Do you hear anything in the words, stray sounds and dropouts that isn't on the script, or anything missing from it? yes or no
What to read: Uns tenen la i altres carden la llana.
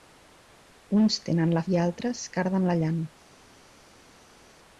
no